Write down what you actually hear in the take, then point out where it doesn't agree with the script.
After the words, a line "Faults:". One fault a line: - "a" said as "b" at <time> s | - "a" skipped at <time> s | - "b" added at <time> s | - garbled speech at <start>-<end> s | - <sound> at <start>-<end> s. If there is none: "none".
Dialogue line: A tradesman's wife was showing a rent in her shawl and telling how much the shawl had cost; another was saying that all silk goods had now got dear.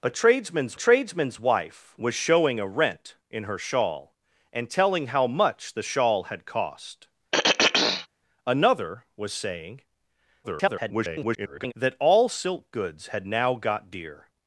A tradesman's tradesman's wife was showing a rent in her shawl and telling how much the shawl had cost; another was saying [garbled] that all silk goods had now got dear.
Faults:
- "tradesman's" added at 0.7 s
- throat clearing at 7.3-8.1 s
- garbled speech at 10.4-11.7 s